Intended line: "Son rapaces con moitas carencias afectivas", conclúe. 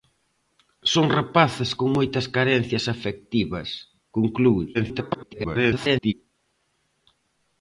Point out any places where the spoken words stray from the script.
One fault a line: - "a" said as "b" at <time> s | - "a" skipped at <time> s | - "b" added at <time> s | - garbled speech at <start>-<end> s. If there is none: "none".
- garbled speech at 4.7-6.1 s